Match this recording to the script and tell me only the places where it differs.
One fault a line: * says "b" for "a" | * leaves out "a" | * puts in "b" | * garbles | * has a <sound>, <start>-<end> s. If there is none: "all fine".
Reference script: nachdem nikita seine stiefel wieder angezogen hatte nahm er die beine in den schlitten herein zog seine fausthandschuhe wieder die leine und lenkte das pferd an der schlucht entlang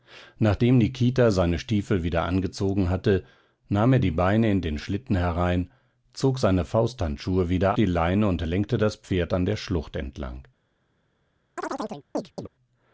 * has a chirp, 11.6-12.5 s